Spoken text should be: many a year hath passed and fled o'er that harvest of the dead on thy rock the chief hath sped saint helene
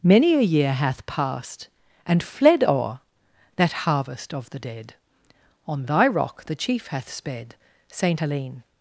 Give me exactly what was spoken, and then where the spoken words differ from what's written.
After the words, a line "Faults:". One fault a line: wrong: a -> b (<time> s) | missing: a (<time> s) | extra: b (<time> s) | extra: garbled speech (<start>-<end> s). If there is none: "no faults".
many a year hath passed and fled o'er that harvest of the dead on thy rock the chief hath sped saint helene
Faults:
no faults